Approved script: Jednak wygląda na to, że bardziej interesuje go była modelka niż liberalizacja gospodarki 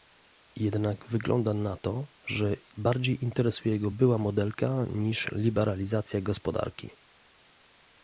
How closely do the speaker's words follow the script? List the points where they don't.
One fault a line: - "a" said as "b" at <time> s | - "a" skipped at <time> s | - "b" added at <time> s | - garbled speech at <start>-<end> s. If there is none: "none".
none